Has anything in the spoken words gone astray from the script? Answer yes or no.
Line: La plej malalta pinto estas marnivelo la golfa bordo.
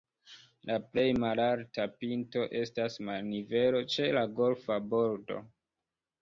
yes